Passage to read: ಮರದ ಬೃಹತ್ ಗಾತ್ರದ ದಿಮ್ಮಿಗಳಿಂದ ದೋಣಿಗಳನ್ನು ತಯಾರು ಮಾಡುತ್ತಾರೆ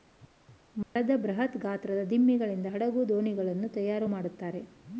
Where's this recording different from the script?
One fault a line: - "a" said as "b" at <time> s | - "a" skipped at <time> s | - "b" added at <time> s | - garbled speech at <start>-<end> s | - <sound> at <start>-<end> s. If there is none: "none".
- dropout at 0.8-1.0 s
- "ಹಡಗು" added at 2.6 s